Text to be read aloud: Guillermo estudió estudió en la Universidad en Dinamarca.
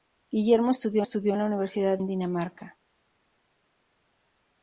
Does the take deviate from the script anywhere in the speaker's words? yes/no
no